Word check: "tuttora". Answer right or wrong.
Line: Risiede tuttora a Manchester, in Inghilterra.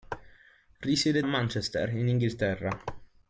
wrong